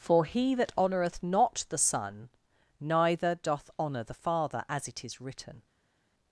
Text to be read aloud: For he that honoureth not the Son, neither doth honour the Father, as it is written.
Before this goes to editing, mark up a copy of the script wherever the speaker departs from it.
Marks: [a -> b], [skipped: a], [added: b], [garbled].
For he that honoureth not the Son, neither doth honour the Father, as it is written.